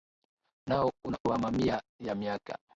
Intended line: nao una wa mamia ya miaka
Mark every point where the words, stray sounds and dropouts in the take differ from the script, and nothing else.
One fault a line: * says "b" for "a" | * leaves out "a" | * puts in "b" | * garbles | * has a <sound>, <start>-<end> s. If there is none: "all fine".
all fine